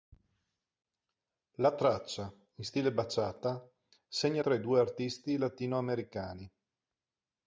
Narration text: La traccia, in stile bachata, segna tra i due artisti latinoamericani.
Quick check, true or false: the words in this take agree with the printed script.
true